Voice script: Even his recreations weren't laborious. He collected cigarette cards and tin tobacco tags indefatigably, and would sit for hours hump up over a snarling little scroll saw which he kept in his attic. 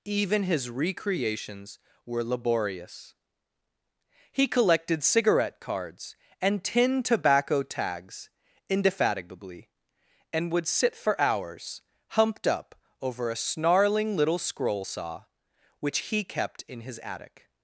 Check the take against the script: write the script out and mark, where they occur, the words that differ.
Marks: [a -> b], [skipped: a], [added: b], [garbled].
Even his recreations [weren't -> were] laborious. He collected cigarette cards and tin tobacco tags indefatigably, and would sit for hours [hump -> humped] up over a snarling little scroll saw which he kept in his attic.